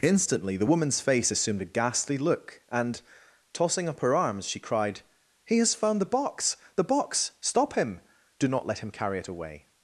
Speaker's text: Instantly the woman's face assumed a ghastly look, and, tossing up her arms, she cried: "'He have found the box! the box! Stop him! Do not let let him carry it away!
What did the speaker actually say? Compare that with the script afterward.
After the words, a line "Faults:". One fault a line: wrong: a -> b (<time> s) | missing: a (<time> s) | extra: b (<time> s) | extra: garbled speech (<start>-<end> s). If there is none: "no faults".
Instantly the woman's face assumed a ghastly look, and, tossing up her arms, she cried: "'He has found the box! the box! Stop him! Do not let him carry it away!
Faults:
wrong: have -> has (5.6 s)
missing: let (8.8 s)